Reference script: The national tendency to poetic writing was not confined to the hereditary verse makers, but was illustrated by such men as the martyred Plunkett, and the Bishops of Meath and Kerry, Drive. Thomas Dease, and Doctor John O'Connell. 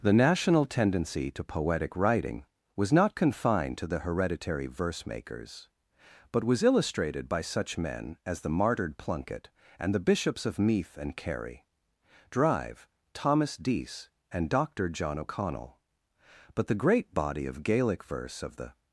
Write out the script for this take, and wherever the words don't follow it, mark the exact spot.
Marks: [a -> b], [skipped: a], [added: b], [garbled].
The national tendency to poetic writing was not confined to the hereditary verse makers, but was illustrated by such men as the martyred Plunkett, and the Bishops of Meath and Kerry, Drive. Thomas Dease, and Doctor John O'Connell. [added: But the great body of Gaelic verse of the]